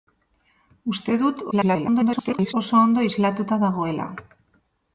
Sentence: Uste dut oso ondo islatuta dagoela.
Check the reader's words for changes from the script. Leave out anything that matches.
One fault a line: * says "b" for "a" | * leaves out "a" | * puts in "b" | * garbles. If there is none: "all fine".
* garbles